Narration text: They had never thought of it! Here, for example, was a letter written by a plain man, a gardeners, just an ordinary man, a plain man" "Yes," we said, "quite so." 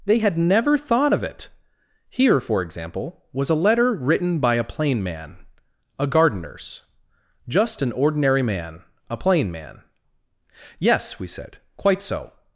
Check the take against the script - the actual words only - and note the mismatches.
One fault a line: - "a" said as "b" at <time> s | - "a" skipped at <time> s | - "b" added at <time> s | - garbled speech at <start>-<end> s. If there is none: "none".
none